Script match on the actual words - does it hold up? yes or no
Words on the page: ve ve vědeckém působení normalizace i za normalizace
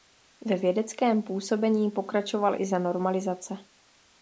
no